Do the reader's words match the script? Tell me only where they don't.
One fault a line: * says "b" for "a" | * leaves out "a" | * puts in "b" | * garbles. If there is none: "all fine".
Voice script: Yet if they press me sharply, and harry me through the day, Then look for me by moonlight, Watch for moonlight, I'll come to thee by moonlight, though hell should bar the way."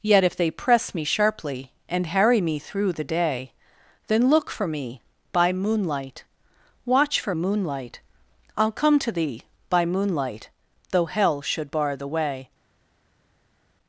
all fine